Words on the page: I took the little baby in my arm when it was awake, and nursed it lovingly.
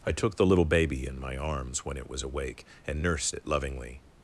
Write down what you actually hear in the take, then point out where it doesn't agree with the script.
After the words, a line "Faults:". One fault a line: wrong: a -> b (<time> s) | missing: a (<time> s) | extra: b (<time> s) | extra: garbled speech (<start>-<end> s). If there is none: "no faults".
I took the little baby in my arms when it was awake, and nursed it lovingly.
Faults:
wrong: arm -> arms (1.3 s)